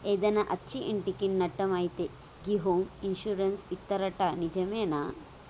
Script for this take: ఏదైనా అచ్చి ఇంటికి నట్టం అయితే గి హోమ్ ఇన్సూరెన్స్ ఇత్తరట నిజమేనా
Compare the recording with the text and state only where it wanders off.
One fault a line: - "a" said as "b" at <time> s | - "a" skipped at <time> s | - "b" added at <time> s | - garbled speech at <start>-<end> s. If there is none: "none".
none